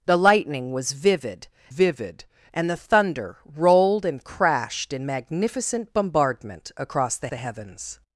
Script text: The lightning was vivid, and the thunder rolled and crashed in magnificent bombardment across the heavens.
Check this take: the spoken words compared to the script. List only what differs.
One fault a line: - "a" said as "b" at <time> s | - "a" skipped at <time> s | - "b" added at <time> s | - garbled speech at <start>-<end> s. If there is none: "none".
- "vivid" added at 1.7 s
- "the" added at 7.3 s